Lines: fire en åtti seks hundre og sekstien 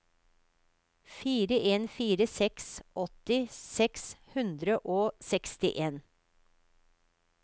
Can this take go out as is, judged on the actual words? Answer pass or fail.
fail